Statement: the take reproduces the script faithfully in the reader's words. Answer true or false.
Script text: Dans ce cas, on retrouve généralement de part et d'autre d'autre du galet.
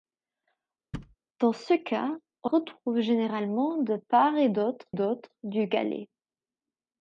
true